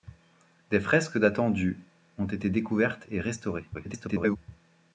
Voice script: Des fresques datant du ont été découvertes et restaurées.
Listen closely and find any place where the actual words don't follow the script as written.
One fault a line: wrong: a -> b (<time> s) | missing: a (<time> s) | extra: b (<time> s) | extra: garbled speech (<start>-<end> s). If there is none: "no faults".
extra: garbled speech (3.7-4.4 s)